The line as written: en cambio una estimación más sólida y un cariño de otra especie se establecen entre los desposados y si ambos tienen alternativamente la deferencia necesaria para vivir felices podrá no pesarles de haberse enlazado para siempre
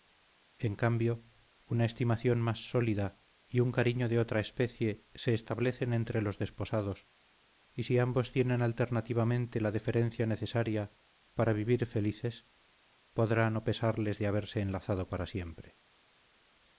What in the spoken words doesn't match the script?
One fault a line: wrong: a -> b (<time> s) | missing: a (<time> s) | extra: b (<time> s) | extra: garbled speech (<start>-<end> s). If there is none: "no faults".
no faults